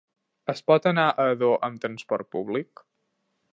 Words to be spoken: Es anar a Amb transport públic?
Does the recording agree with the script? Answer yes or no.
no